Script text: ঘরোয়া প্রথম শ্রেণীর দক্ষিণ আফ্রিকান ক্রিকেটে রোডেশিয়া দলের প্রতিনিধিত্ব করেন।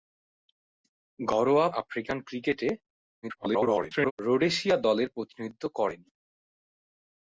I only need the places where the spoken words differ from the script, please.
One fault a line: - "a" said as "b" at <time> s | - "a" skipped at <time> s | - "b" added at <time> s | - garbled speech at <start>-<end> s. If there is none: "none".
- "প্রথম শ্রেণীর দক্ষিণ" skipped at 1.7 s
- garbled speech at 3.2-4.1 s